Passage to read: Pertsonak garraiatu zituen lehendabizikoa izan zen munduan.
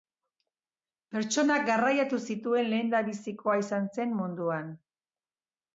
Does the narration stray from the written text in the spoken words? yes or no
no